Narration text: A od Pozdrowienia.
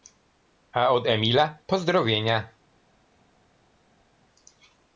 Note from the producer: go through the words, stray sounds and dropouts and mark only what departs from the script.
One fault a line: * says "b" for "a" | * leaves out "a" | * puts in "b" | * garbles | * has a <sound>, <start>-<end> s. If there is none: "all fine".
* puts in "Emila"